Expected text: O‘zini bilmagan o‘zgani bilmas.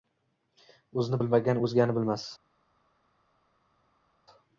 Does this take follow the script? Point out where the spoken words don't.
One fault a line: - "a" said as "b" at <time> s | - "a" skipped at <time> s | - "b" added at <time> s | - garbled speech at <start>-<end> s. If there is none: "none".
none